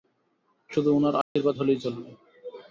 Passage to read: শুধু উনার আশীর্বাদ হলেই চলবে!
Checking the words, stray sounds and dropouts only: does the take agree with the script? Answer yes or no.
no